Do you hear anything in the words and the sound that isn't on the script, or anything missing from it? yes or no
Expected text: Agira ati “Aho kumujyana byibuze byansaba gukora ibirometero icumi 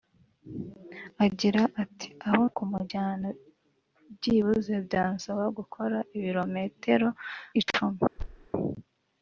yes